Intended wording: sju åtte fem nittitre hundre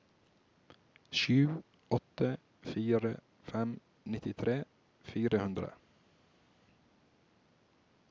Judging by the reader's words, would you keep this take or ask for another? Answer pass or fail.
fail